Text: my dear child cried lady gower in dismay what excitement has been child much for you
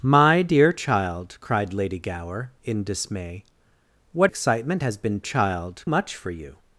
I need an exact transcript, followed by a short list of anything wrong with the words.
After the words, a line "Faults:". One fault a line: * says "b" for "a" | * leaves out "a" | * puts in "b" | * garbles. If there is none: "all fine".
my dear child cried lady gower in dismay what excitement has been child much for you
Faults:
all fine